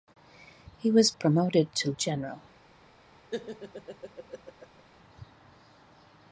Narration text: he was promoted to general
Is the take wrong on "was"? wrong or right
right